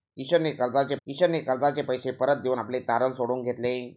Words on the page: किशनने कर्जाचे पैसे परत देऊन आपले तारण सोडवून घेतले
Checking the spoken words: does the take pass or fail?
fail